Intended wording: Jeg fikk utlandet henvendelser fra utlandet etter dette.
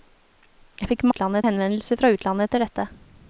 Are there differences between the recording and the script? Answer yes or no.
no